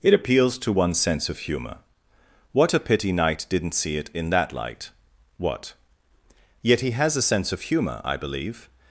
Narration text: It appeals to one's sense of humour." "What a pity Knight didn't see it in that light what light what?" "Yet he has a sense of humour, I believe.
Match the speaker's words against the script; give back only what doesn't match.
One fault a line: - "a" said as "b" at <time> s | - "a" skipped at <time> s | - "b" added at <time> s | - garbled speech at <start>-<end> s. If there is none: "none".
- "light what" skipped at 5.7 s